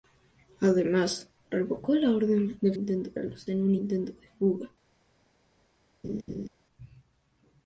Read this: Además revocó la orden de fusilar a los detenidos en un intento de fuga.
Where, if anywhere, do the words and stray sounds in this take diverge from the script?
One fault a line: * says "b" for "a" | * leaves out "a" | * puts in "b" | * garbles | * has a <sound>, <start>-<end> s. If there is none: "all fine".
* says "intento" for "fusilar"
* leaves out "detenidos"
* has a laugh, 6.0-6.5 s